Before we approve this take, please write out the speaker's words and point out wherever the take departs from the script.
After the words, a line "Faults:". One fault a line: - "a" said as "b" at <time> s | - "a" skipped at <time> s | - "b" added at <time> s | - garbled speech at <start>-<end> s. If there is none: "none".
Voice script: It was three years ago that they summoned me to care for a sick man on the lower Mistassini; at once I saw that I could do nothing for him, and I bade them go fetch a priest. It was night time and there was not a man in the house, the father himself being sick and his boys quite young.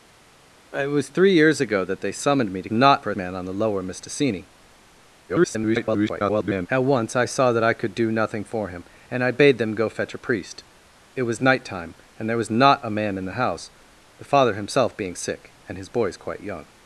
It was three years ago that they summoned me to not for a man on the lower Mistassini; [garbled] at once I saw that I could do nothing for him, and I bade them go fetch a priest. It was night time and there was not a man in the house, the father himself being sick and his boys quite young.
Faults:
- "care" said as "not" at 2.7 s
- "sick" skipped at 3.2 s
- garbled speech at 5.3-6.7 s